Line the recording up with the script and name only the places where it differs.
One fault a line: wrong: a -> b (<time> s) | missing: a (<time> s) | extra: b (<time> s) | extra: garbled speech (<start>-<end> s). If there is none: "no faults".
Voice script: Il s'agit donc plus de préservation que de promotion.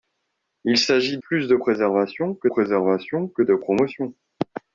missing: donc (1.2 s)
extra: préservation que (2.4 s)